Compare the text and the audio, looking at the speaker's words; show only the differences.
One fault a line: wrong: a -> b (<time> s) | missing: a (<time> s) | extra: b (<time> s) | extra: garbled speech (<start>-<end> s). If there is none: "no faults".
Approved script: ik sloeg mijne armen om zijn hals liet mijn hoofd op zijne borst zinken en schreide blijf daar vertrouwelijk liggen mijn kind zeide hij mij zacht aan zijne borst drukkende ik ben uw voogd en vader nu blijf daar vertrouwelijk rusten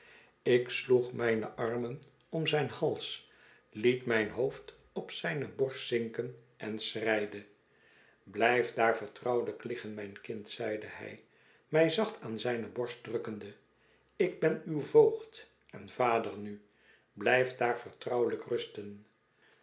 no faults